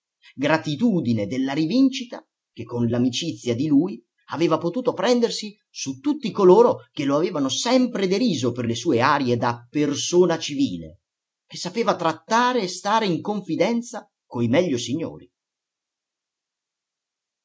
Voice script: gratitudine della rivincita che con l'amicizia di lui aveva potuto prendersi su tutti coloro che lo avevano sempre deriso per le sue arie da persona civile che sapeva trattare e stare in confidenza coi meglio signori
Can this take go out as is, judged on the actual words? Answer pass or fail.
pass